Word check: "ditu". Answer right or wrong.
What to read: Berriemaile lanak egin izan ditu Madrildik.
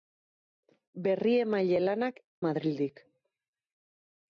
wrong